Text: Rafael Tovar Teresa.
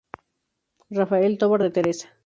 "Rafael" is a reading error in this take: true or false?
false